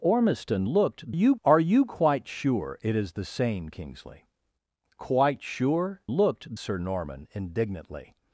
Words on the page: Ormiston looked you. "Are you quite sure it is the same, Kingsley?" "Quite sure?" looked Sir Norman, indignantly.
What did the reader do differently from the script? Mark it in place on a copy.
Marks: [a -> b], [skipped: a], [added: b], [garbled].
Ormiston looked you. "Are you quite sure it is the same, Kingsley?" "Quite sure?" looked Sir Norman, indignantly.